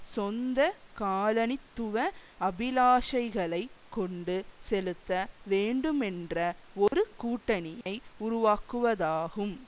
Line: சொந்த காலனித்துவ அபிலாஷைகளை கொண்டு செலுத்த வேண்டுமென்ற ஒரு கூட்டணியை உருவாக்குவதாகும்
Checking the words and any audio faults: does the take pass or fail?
fail